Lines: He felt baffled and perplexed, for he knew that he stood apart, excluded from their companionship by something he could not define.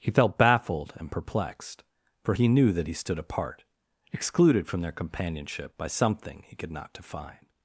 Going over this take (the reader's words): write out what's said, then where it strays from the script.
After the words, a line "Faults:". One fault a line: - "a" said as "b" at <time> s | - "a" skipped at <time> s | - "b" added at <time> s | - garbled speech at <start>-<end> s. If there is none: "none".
He felt baffled and perplexed, for he knew that he stood apart, excluded from their companionship by something he could not define.
Faults:
none